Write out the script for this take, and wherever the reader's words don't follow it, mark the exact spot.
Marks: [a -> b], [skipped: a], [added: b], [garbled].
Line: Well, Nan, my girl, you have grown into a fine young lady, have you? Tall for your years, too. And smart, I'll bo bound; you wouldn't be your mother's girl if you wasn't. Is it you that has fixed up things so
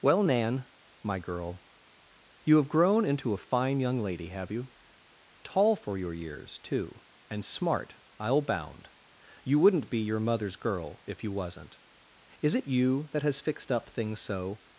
Well, Nan, my girl, you have grown into a fine young lady, have you? Tall for your years, too. And smart, I'll [skipped: bo] bound; you wouldn't be your mother's girl if you wasn't. Is it you that has fixed up things so